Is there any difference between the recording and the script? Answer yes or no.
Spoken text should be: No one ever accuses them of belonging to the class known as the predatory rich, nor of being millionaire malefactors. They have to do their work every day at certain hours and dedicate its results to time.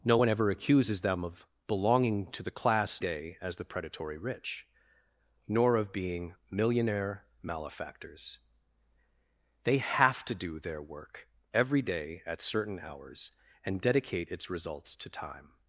yes